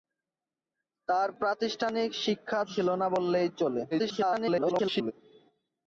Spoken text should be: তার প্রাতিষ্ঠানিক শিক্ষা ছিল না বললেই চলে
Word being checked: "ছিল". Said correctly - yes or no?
yes